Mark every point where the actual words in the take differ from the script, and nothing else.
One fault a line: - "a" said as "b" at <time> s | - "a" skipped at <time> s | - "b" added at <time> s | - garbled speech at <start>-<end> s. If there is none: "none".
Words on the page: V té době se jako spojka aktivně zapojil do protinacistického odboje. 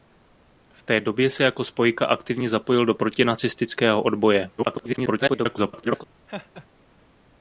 - garbled speech at 4.6-6.0 s